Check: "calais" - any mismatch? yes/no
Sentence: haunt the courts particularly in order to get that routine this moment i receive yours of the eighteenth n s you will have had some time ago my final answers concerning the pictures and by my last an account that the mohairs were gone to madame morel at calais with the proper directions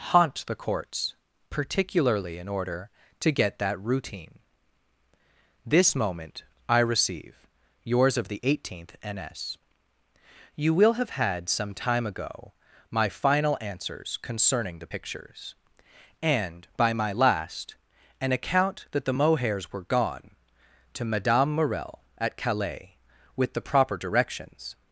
no